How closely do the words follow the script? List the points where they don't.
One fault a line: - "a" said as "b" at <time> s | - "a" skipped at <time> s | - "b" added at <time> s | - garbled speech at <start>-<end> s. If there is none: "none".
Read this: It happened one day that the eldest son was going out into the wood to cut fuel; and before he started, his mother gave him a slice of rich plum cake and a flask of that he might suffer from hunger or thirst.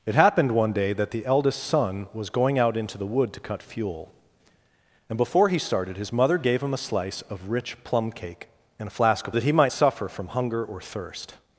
none